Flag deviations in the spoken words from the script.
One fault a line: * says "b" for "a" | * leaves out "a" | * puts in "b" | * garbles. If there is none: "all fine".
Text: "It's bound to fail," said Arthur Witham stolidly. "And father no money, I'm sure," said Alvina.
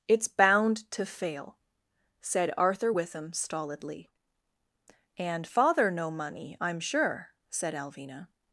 all fine